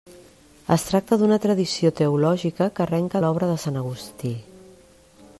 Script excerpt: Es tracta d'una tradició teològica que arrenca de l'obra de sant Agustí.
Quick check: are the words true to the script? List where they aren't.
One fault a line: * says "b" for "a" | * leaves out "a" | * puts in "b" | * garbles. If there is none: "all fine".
* leaves out "de"